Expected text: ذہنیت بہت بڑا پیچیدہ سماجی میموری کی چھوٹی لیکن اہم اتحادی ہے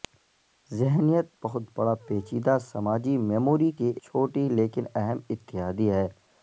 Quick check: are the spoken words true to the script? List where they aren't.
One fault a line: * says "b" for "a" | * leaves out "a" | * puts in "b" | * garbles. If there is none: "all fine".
all fine